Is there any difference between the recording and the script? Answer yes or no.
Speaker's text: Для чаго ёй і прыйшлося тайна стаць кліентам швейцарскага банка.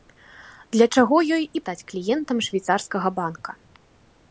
yes